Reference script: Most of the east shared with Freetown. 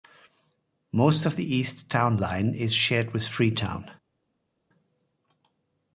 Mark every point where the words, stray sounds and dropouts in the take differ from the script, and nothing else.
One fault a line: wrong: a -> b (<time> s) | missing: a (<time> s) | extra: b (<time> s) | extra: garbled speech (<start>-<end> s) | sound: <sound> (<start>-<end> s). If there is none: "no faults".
extra: town line is (1.9 s)